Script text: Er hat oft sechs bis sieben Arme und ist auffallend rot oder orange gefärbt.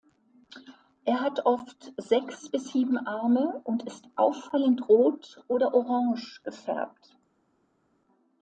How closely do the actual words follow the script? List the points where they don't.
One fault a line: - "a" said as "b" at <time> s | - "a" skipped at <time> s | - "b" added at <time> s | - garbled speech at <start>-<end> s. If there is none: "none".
none